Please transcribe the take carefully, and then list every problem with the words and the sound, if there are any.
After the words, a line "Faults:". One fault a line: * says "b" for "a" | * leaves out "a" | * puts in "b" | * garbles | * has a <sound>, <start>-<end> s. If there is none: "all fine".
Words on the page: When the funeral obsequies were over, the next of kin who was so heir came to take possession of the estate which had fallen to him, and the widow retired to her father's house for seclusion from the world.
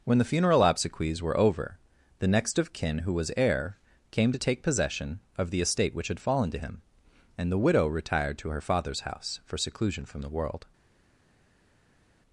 When the funeral obsequies were over, the next of kin who was heir came to take possession of the estate which had fallen to him, and the widow retired to her father's house for seclusion from the world.
Faults:
* leaves out "so"